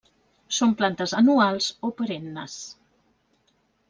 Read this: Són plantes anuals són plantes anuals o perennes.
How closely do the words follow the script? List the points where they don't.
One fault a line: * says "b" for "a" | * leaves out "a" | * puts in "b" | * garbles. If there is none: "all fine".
* leaves out "són plantes anuals"